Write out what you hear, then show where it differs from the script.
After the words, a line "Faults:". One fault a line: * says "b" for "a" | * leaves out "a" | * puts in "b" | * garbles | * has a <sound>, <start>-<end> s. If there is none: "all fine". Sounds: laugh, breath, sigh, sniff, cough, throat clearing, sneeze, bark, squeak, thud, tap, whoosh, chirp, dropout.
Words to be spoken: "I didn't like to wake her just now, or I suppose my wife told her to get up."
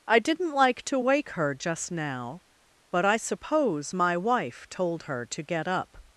"I didn't like to wake her just now, but I suppose my wife told her to get up."
Faults:
* says "but" for "or"